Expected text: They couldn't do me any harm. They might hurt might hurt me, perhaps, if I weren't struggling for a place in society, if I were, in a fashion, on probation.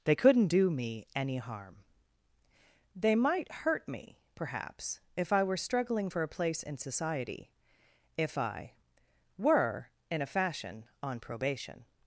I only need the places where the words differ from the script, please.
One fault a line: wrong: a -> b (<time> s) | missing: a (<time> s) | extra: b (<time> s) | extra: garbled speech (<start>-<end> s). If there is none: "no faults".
missing: might hurt (3.9 s)
wrong: weren't -> were (5.4 s)